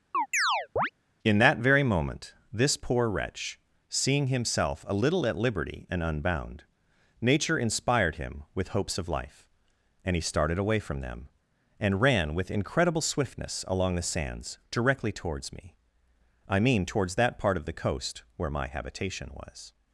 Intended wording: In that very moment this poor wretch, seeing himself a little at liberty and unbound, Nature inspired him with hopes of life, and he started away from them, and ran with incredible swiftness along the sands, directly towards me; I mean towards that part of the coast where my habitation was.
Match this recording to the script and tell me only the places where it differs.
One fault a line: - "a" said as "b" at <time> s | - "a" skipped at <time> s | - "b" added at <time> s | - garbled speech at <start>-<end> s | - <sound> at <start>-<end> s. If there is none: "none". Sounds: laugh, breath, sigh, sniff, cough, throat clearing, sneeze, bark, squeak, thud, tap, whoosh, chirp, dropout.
- chirp at 0.1-0.9 s